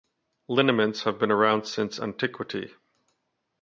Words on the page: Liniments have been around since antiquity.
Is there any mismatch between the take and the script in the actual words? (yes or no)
no